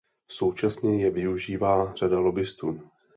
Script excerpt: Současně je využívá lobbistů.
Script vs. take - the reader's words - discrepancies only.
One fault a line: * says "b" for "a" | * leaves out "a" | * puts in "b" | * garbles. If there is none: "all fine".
* puts in "řada"